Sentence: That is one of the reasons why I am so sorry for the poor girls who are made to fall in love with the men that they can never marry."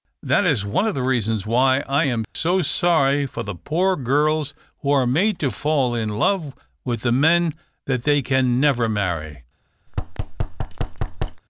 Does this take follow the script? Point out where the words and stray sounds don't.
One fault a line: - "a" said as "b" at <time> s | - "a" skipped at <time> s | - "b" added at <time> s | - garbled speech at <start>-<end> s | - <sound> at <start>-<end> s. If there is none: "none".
- dropout at 2.2-2.4 s
- thud at 9.9-11.4 s